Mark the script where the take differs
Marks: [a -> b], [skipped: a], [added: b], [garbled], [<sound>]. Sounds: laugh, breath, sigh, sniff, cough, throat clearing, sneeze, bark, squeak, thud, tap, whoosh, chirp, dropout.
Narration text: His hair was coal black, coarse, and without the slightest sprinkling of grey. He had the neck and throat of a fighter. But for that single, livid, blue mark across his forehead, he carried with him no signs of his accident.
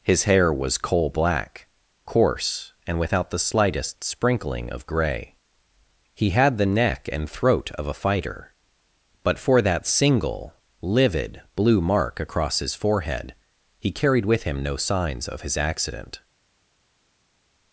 His hair was coal black, coarse, and without the slightest sprinkling of grey. He had the neck and throat of a fighter. But for that single, livid, blue mark across his forehead, he carried with him no signs of his accident.